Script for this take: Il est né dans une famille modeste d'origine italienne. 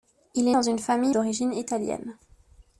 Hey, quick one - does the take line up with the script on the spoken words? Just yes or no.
no